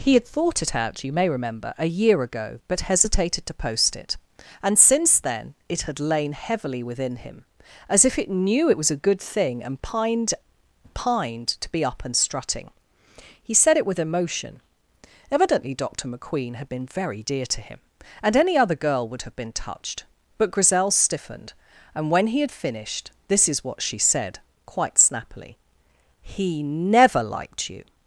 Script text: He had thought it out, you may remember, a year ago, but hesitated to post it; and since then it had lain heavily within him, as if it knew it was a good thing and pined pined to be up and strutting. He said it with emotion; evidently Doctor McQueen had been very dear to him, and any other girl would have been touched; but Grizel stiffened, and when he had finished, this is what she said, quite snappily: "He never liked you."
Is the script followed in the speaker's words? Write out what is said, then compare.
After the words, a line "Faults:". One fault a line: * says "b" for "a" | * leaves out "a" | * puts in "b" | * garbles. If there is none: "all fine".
He had thought it out, you may remember, a year ago, but hesitated to post it; and since then it had lain heavily within him, as if it knew it was a good thing and pined pined to be up and strutting. He said it with emotion; evidently Doctor McQueen had been very dear to him, and any other girl would have been touched; but Grizel stiffened, and when he had finished, this is what she said, quite snappily: "He never liked you."
Faults:
all fine